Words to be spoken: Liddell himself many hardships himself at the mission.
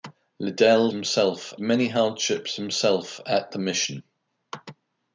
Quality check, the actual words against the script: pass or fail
pass